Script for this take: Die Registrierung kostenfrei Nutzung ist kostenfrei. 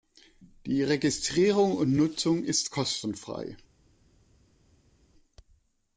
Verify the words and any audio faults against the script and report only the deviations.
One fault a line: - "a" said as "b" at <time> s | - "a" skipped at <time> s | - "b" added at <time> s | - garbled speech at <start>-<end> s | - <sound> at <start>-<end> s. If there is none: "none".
- "kostenfrei" said as "und" at 1.8 s